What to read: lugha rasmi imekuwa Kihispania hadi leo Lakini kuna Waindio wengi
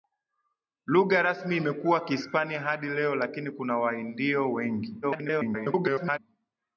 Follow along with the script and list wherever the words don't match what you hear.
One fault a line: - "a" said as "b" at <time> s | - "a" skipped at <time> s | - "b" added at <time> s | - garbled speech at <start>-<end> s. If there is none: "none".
- garbled speech at 5.0-6.2 s